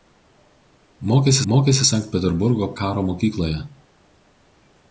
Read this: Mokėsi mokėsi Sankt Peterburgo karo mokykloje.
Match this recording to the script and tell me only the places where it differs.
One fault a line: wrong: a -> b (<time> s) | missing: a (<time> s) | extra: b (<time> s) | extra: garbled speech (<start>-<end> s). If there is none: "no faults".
no faults